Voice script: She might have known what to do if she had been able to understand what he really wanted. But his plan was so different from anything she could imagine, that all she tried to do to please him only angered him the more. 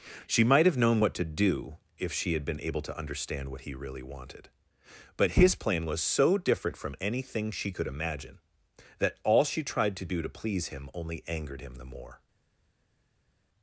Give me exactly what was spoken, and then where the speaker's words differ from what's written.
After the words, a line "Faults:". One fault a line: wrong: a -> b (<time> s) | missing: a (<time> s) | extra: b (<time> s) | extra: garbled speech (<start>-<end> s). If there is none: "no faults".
She might have known what to do if she had been able to understand what he really wanted. But his plan was so different from anything she could imagine, that all she tried to do to please him only angered him the more.
Faults:
no faults